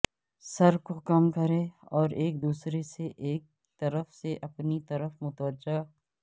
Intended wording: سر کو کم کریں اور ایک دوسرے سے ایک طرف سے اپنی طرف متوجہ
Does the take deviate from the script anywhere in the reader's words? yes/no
no